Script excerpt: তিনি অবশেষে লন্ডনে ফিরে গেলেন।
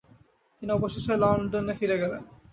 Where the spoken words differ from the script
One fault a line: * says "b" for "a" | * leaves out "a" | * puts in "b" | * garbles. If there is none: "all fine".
all fine